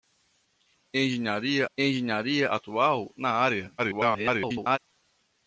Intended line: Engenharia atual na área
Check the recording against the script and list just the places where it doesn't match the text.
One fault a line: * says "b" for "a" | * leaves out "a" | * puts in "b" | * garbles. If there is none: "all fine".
* puts in "engenharia"
* garbles